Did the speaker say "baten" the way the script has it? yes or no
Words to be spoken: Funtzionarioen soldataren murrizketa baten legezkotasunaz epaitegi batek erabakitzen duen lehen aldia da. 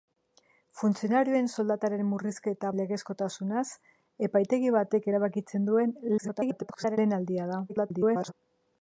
no